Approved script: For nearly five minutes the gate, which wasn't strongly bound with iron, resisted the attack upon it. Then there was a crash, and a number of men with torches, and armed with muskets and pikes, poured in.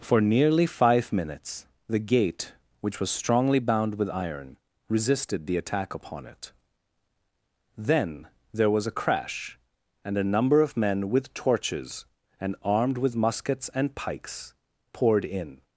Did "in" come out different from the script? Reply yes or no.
no